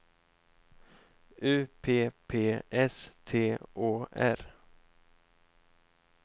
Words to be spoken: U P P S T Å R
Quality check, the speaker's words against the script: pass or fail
pass